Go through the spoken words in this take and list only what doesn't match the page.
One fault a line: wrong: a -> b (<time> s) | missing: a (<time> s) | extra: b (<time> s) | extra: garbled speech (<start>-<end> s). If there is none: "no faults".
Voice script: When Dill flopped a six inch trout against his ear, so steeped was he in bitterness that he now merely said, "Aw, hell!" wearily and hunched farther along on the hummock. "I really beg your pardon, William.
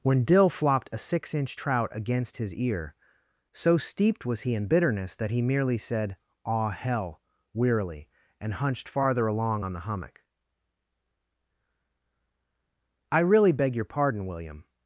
missing: now (5.4 s)